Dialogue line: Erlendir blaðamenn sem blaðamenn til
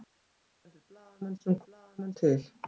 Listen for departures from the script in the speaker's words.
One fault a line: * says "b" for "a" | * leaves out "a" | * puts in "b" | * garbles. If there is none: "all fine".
all fine